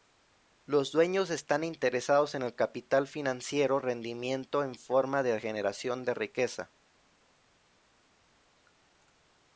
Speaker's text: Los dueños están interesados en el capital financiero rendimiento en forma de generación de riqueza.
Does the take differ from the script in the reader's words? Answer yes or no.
no